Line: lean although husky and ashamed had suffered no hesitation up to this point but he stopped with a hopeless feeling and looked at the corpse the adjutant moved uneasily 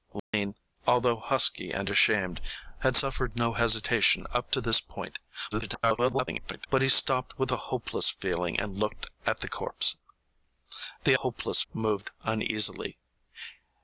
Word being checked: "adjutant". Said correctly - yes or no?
no